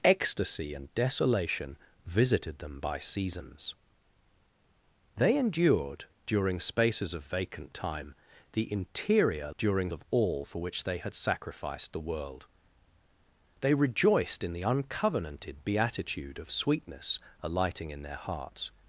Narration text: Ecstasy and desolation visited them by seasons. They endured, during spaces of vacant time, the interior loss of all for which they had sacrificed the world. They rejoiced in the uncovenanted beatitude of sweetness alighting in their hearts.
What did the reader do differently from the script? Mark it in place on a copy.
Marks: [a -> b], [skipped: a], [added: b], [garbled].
Ecstasy and desolation visited them by seasons. They endured, during spaces of vacant time, the interior [loss -> during] of all for which they had sacrificed the world. They rejoiced in the uncovenanted beatitude of sweetness alighting in their hearts.